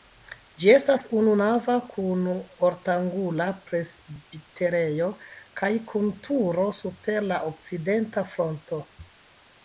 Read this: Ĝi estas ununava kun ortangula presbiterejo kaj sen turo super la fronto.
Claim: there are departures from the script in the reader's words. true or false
true